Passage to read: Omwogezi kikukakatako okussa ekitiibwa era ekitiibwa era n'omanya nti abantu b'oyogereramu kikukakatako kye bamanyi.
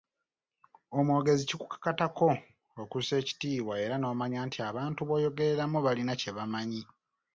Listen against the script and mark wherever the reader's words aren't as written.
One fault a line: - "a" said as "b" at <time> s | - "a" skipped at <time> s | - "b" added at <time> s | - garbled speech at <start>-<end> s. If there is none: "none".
- "ekitiibwa era" skipped at 4.0 s
- "kikukakatako" said as "balina" at 5.9 s